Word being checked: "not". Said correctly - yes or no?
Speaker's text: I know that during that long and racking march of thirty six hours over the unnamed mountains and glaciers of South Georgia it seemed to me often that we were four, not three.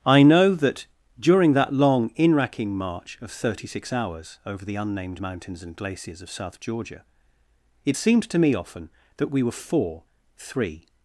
no